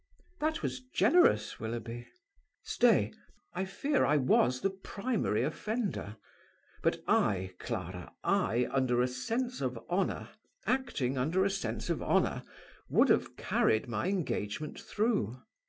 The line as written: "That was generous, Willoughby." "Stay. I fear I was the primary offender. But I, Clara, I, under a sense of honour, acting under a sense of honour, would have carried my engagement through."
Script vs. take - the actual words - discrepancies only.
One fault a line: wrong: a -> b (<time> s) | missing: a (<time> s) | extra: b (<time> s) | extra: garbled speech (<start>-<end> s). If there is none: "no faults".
no faults